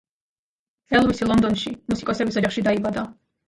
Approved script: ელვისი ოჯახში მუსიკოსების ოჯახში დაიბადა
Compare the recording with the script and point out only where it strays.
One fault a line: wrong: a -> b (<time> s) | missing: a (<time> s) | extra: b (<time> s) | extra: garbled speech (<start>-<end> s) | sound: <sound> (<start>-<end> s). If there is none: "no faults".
wrong: ოჯახში -> ლონდონში (1.3 s)